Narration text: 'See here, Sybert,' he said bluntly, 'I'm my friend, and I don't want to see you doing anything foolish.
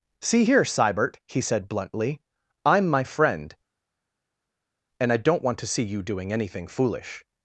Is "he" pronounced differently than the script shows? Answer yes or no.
no